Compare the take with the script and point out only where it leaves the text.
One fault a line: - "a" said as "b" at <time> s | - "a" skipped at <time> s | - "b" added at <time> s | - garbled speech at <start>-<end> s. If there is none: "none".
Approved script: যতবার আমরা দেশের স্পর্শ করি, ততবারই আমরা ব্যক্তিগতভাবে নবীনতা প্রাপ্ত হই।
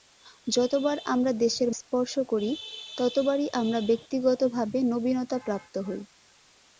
none